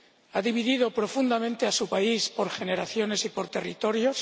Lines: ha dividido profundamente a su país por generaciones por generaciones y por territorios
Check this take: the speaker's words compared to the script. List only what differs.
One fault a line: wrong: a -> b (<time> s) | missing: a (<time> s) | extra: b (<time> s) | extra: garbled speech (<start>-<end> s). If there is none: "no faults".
missing: por generaciones (3.3 s)